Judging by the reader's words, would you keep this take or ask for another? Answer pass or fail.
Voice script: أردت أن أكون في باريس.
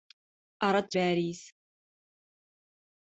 fail